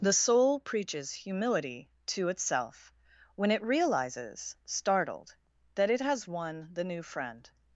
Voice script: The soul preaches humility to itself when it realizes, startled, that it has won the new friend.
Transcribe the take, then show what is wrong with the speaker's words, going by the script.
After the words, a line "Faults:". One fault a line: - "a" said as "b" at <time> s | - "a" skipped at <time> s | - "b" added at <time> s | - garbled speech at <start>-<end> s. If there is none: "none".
The soul preaches humility to itself when it realizes, startled, that it has won the new friend.
Faults:
none